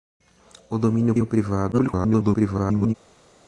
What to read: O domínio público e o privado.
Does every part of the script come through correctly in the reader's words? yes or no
no